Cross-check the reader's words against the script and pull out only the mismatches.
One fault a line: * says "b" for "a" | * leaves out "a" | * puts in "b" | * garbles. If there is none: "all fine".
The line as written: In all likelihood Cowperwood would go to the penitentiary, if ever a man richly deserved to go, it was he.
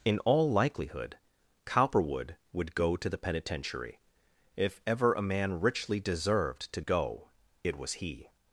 all fine